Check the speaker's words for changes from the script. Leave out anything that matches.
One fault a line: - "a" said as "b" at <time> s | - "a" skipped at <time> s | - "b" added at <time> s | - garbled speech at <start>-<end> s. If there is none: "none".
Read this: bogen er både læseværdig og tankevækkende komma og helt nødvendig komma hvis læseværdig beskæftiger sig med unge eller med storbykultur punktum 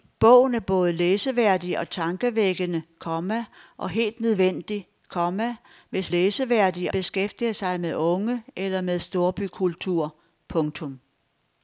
none